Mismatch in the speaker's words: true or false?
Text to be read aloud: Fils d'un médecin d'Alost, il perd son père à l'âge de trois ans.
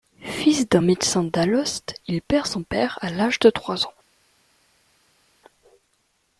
false